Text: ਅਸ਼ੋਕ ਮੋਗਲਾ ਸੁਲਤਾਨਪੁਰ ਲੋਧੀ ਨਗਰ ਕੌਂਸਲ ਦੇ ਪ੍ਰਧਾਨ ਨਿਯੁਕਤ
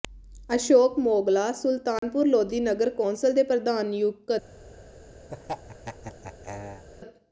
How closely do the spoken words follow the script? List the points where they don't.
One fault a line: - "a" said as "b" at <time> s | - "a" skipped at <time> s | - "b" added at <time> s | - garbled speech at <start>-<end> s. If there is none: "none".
none